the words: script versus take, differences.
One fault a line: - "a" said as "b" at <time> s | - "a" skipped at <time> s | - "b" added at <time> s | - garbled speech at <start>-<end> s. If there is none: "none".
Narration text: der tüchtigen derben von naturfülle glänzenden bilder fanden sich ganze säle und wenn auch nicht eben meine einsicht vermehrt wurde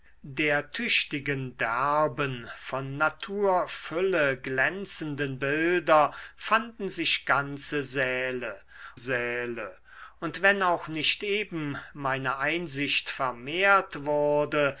- "säle" added at 8.9 s